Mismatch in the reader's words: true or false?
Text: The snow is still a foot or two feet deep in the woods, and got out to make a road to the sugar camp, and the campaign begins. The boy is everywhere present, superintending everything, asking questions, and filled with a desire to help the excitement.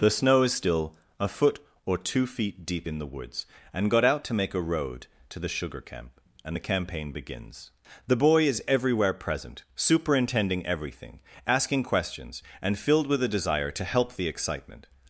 false